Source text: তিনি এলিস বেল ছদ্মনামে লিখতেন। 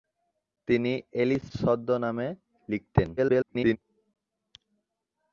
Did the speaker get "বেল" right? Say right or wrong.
wrong